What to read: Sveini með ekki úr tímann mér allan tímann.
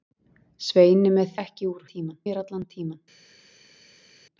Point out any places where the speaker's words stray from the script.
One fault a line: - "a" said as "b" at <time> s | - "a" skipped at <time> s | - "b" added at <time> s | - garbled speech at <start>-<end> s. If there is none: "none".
none